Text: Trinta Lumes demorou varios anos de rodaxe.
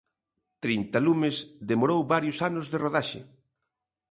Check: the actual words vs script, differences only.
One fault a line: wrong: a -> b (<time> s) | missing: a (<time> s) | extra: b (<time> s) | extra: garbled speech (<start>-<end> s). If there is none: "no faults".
no faults